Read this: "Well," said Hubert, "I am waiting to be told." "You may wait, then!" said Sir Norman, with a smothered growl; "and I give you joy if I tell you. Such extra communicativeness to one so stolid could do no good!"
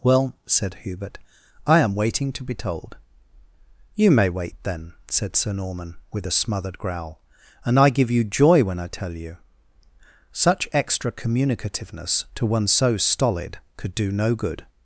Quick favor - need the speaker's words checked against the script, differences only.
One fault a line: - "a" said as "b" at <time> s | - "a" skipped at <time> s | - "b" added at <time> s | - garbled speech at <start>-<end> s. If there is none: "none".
- "if" said as "when" at 8.6 s